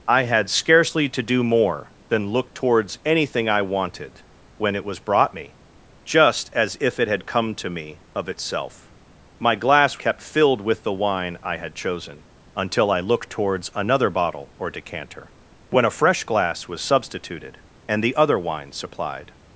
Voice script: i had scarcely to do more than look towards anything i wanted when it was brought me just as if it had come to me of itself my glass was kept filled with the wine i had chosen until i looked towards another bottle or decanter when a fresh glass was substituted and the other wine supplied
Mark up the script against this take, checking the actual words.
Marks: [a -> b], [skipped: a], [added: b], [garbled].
i had scarcely to do more than look towards anything i wanted when it was brought me just as if it had come to me of itself my glass [skipped: was] kept filled with the wine i had chosen until i looked towards another bottle or decanter when a fresh glass was substituted and the other wine supplied